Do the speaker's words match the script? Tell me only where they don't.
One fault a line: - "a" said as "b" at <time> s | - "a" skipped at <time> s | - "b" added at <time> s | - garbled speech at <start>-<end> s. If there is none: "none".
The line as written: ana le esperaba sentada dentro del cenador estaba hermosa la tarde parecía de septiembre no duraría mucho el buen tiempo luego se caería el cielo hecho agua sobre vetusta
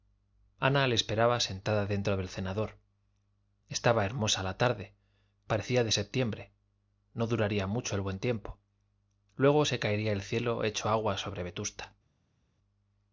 none